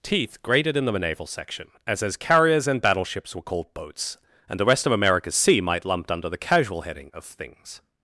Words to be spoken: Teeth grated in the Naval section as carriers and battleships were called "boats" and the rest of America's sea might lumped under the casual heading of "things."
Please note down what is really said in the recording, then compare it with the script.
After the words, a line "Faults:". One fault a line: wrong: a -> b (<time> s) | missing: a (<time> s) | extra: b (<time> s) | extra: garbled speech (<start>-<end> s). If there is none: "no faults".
Teeth grated in the Naval section as as carriers and battleships were called "boats" and the rest of America's sea might lumped under the casual heading of "things."
Faults:
extra: as (2.0 s)